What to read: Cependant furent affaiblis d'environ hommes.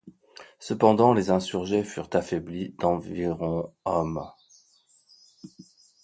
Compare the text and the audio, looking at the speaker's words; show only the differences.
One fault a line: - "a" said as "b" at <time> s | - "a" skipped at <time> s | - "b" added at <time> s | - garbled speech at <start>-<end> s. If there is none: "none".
- "les insurgés" added at 1.1 s